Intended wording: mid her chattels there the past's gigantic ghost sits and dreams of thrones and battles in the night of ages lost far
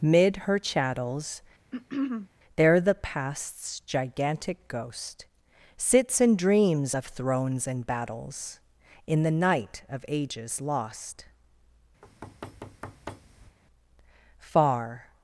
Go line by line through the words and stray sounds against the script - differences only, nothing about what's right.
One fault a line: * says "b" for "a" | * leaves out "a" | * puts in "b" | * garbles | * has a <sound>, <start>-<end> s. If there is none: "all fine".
* has a throat clearing, 1.7-2.3 s
* has a thud, 12.0-13.6 s